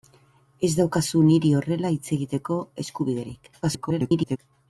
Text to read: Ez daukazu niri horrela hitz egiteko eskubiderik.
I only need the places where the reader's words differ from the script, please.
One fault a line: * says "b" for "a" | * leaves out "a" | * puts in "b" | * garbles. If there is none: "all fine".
* garbles